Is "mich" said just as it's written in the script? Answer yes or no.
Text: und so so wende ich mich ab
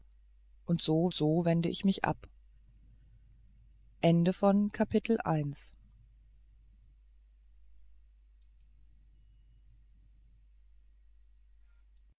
yes